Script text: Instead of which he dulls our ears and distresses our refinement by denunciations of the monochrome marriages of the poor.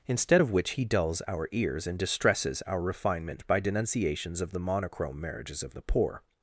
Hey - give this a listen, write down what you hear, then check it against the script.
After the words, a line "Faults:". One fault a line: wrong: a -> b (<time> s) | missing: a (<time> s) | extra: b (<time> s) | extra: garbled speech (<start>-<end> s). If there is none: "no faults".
Instead of which he dulls our ears and distresses our refinement by denunciations of the monochrome marriages of the poor.
Faults:
no faults